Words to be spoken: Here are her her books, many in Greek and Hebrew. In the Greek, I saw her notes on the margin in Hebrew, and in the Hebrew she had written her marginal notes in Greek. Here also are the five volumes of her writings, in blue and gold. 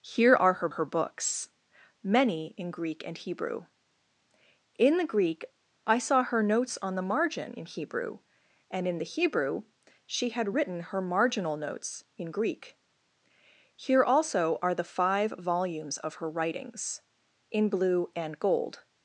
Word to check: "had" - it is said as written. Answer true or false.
true